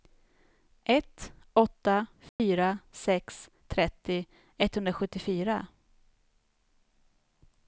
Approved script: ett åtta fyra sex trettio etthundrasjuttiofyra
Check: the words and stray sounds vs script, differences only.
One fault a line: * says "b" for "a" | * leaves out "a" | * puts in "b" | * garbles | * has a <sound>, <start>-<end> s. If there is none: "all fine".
* has a dropout, 2.3-2.4 s